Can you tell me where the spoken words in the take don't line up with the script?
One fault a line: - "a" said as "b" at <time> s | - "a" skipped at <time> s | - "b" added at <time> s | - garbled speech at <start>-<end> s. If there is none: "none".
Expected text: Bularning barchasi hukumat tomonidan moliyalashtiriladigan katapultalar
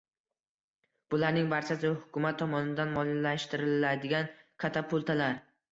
none